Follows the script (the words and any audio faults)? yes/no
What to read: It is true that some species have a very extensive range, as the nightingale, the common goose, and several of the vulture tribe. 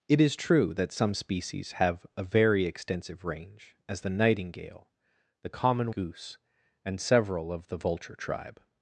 yes